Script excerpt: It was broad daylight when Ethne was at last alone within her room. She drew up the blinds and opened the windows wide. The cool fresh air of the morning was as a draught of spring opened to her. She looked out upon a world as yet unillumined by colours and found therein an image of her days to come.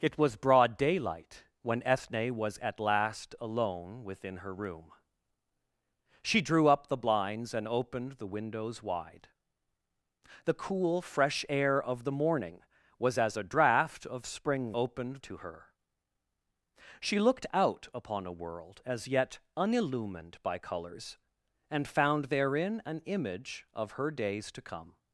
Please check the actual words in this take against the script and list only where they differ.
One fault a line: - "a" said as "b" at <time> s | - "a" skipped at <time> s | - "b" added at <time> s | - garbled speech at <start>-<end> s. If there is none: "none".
none